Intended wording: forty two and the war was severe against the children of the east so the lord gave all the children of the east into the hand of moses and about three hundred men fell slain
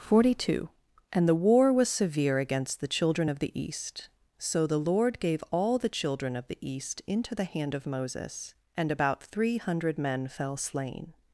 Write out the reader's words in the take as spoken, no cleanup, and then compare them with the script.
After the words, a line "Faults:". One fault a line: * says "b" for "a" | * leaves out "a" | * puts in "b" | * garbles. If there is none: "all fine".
forty two and the war was severe against the children of the east so the lord gave all the children of the east into the hand of moses and about three hundred men fell slain
Faults:
all fine